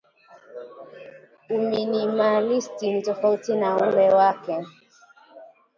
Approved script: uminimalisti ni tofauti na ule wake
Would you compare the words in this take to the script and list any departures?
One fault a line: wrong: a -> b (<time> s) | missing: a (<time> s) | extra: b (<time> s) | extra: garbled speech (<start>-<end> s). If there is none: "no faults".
no faults